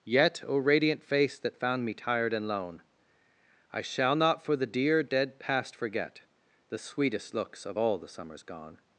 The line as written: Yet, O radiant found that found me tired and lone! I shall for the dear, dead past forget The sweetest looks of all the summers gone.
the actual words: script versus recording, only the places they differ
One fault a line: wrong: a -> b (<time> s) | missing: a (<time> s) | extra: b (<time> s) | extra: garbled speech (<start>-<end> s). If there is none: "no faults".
wrong: found -> face (1.0 s)
extra: not (4.2 s)